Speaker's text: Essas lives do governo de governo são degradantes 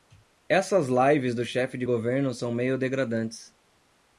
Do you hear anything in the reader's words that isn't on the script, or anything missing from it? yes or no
yes